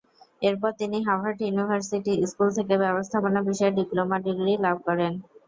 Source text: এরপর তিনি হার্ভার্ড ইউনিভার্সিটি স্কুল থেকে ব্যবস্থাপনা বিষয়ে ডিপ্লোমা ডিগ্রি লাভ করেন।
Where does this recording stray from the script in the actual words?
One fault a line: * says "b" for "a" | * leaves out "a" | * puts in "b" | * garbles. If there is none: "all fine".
all fine